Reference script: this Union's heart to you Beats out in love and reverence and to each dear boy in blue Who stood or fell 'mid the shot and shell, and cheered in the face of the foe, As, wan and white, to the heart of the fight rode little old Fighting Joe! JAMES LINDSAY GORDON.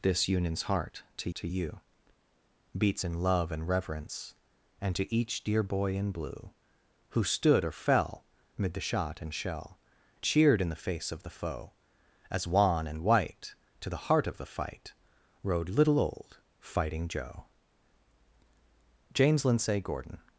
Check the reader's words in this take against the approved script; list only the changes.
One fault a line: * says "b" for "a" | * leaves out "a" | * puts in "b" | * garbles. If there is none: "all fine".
* puts in "to"
* leaves out "out"
* leaves out "and"